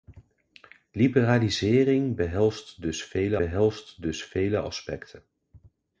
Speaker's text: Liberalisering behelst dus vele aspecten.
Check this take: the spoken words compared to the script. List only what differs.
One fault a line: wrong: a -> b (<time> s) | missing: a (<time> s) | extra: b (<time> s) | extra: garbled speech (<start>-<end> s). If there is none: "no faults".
extra: behelst dus vele (3.3 s)